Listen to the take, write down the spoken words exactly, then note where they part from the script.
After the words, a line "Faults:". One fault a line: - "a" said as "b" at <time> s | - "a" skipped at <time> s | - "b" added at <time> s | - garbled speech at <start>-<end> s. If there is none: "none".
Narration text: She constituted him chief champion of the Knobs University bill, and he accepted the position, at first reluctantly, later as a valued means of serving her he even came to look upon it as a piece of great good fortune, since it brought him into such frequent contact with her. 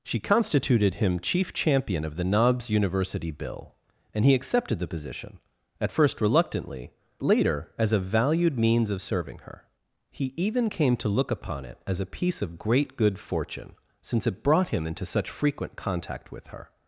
She constituted him chief champion of the Knobs University bill, and he accepted the position, at first reluctantly, later as a valued means of serving her he even came to look upon it as a piece of great good fortune, since it brought him into such frequent contact with her.
Faults:
none